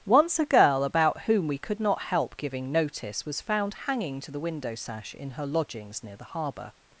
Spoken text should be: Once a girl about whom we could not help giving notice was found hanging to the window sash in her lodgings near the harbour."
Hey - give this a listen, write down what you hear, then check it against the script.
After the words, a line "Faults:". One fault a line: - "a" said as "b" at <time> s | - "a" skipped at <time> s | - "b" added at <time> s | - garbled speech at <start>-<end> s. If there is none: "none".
Once a girl about whom we could not help giving notice was found hanging to the window sash in her lodgings near the harbour."
Faults:
none